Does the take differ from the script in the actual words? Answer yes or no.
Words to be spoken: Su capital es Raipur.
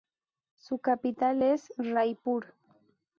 no